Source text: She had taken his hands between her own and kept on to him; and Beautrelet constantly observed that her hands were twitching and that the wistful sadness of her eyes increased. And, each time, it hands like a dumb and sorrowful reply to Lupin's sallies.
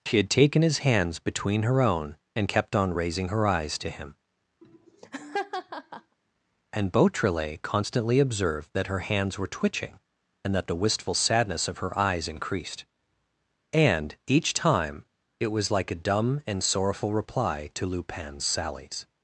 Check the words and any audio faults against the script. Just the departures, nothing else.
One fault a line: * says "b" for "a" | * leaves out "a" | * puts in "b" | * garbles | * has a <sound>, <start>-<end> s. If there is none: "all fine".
* puts in "raising her eyes"
* has a laugh, 4.6-6.2 s
* says "was" for "hands"